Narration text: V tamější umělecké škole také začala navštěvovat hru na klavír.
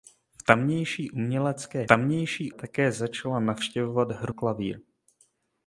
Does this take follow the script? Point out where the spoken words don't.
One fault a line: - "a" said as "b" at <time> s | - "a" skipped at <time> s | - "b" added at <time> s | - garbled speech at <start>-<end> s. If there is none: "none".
- "škole" said as "tamější" at 1.9 s
- "na" skipped at 4.3 s